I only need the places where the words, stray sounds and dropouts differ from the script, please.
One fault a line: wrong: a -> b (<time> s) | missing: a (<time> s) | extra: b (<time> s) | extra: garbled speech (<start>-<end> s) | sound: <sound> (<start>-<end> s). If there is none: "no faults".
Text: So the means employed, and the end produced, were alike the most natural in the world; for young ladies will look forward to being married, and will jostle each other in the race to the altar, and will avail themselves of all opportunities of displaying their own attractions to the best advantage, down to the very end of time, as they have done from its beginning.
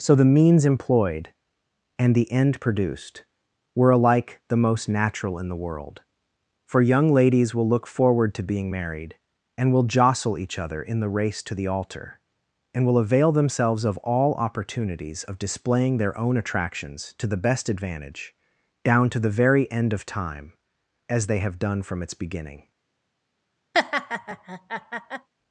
sound: laugh (23.7-25.3 s)